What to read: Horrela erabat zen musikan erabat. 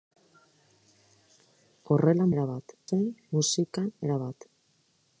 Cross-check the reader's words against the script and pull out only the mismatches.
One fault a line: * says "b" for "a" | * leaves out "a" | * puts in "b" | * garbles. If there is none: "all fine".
all fine